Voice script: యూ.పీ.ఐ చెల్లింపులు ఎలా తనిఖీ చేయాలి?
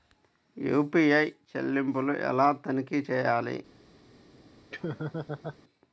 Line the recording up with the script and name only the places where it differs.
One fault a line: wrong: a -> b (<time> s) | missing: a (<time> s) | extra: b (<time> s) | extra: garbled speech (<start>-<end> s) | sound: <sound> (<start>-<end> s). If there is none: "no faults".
sound: laugh (4.7-5.6 s)